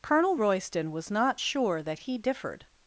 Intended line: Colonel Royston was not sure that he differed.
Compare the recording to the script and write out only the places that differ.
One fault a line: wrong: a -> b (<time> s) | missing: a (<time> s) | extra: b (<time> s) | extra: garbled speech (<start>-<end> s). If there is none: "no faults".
no faults